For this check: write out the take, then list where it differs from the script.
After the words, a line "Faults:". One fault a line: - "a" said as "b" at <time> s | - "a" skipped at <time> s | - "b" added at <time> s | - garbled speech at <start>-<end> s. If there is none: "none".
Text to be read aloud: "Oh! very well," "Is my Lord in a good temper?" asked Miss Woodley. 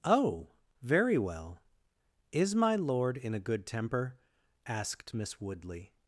"Oh! very well," "Is my Lord in a good temper?" asked Miss Woodley.
Faults:
none